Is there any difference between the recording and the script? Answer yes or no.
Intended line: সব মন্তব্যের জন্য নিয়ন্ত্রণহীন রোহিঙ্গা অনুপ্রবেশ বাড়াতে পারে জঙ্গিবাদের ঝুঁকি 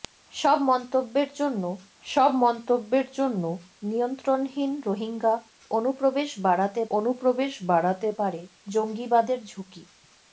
yes